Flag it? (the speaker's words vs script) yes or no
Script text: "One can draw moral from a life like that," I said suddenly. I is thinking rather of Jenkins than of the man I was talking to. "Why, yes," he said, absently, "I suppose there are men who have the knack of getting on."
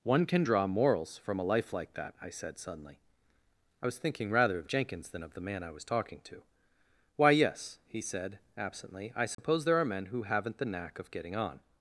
yes